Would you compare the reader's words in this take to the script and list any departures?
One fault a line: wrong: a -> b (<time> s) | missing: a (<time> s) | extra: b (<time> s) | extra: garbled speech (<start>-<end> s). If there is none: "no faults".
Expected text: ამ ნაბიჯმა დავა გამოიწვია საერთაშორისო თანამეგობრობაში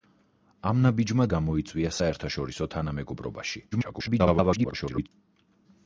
missing: დავა (1.3 s)
extra: garbled speech (3.7-5.1 s)